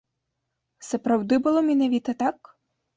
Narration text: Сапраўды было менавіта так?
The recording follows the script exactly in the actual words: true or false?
true